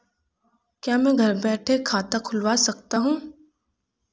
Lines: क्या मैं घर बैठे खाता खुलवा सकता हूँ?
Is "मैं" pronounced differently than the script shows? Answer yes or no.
no